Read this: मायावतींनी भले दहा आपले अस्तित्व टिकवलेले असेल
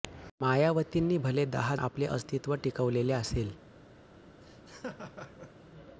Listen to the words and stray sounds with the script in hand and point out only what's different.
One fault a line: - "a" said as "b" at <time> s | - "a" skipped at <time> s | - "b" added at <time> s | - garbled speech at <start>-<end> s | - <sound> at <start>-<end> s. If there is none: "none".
- laugh at 4.4-5.5 s